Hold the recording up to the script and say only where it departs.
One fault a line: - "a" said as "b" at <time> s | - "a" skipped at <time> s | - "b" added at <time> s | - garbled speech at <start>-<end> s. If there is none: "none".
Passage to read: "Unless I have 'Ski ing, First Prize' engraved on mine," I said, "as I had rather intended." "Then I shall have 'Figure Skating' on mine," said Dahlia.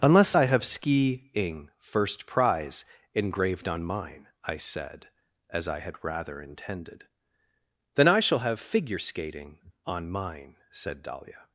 none